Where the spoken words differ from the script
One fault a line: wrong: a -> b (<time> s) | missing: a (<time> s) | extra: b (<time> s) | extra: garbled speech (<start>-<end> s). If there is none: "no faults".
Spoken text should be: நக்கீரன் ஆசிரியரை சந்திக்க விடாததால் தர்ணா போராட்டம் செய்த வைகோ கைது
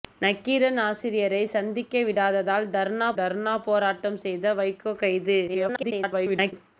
extra: தர்ணா (3.1 s)
extra: garbled speech (5.5-6.5 s)